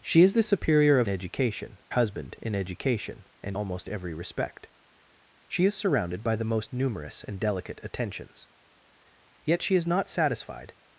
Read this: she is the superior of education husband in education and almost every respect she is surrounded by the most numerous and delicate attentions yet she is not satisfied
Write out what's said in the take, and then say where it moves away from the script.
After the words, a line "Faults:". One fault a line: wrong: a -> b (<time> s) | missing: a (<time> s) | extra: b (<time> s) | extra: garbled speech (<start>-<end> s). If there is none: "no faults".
she is the superior of education husband in education and almost every respect she is surrounded by the most numerous and delicate attentions yet she is not satisfied
Faults:
no faults